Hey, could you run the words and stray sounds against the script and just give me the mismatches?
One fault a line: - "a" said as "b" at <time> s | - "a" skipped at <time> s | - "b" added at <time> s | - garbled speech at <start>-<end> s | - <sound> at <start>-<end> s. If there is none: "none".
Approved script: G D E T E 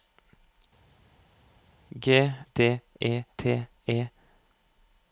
none